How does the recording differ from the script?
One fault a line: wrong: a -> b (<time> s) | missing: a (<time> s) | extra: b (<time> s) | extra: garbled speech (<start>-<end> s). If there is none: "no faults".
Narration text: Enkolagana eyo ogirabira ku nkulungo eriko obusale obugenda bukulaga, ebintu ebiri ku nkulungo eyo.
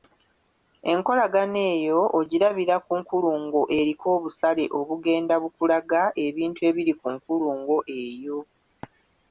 no faults